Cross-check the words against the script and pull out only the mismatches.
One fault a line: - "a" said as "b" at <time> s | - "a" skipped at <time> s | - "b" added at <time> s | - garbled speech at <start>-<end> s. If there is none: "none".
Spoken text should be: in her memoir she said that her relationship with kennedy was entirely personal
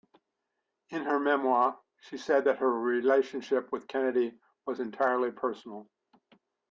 none